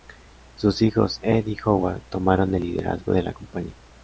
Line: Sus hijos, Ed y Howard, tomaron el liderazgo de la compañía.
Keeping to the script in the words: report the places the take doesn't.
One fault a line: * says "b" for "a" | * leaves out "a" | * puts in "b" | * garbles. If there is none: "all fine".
all fine